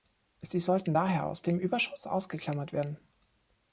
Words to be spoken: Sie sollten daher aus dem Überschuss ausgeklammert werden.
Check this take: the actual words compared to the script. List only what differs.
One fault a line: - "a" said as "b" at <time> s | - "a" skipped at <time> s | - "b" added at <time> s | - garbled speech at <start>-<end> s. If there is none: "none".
none